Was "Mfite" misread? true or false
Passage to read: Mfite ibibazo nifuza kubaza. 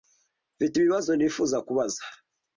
false